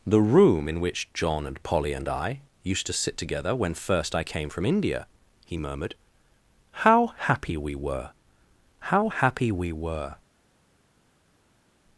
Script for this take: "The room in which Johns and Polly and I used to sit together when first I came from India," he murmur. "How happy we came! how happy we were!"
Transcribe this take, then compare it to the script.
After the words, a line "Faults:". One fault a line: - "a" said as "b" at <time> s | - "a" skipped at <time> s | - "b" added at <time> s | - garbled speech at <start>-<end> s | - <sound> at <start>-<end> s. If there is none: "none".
"The room in which John and Polly and I used to sit together when first I came from India," he murmured. "How happy we were! how happy we were!"
Faults:
- "Johns" said as "John" at 1.1 s
- "murmur" said as "murmured" at 5.6 s
- "came" said as "were" at 7.8 s